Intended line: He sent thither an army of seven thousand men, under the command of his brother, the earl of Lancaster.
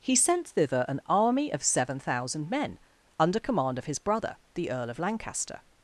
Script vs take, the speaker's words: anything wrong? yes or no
yes